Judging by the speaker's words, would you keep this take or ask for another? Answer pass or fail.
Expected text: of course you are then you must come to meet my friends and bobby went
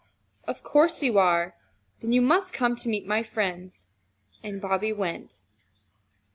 pass